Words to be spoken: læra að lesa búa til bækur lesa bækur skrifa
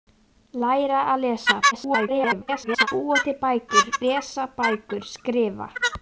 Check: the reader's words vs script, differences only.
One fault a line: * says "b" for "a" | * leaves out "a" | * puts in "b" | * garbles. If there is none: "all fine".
* garbles